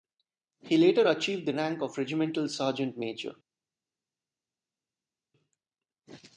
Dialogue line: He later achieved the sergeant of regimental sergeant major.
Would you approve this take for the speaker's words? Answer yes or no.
no